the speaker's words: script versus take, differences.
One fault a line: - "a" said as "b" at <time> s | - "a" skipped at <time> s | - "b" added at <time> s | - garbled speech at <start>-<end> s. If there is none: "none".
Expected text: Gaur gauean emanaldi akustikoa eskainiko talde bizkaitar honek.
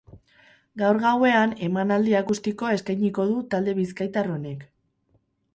- "du" added at 3.3 s